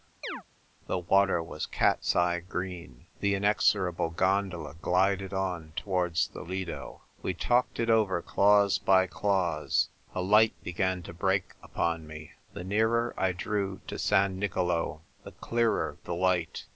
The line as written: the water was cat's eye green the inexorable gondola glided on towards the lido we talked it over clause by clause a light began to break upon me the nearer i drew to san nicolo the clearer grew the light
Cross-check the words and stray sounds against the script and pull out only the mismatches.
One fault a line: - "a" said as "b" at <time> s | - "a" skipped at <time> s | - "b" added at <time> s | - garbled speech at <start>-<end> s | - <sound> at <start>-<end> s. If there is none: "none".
- chirp at 0.2-0.4 s
- "grew" skipped at 16.0 s